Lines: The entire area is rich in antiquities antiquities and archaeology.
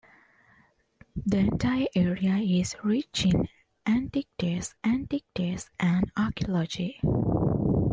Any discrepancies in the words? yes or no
no